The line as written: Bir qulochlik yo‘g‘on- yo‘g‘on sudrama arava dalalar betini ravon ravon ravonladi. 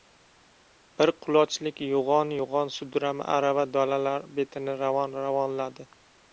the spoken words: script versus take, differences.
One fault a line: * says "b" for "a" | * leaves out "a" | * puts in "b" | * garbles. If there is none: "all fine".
* leaves out "ravon"